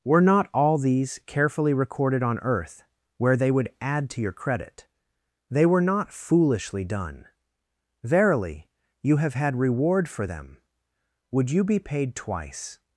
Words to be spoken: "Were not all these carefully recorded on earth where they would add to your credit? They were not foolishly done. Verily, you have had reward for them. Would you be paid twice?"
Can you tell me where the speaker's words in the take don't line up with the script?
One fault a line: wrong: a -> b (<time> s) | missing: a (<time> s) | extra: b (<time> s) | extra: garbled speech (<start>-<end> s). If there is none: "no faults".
no faults